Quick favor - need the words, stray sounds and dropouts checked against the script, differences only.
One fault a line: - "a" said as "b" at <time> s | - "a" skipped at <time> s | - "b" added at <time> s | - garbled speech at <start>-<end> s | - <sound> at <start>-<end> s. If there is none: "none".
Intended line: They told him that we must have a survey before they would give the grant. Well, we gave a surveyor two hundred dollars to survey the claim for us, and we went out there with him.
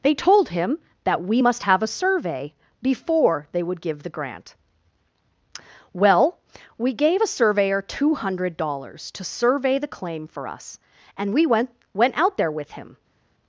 - "went" added at 11.9 s